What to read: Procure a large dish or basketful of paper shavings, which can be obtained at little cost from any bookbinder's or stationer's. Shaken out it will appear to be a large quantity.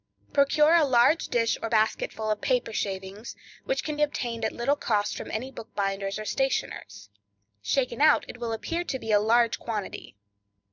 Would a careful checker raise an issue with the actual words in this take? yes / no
yes